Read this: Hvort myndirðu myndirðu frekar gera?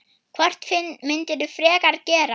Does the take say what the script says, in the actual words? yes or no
no